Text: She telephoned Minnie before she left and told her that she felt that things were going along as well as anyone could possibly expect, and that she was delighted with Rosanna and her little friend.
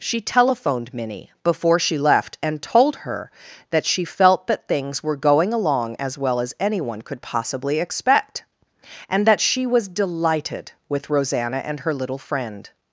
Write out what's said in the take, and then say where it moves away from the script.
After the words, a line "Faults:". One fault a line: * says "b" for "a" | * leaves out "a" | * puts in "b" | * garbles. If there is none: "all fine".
She telephoned Minnie before she left and told her that she felt that things were going along as well as anyone could possibly expect, and that she was delighted with Rosanna and her little friend.
Faults:
all fine